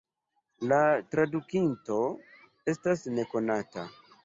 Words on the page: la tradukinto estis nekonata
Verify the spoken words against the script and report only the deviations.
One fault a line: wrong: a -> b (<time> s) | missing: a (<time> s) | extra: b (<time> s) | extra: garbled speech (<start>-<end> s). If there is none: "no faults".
wrong: estis -> estas (2.7 s)